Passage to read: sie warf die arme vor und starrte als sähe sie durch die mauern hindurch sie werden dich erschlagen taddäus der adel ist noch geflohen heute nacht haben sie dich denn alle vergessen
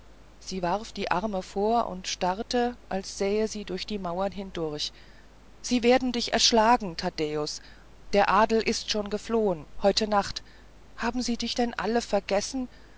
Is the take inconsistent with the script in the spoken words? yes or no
yes